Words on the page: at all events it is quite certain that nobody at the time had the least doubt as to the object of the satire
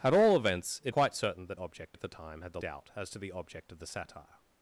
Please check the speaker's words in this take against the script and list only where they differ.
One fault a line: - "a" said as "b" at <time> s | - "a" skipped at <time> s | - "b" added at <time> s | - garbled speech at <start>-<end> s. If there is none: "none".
- "is" skipped at 0.9 s
- "nobody" said as "object" at 1.6 s
- "least" skipped at 2.6 s